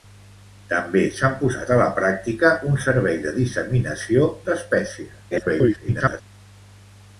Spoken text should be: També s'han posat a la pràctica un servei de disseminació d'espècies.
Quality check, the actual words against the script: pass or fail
fail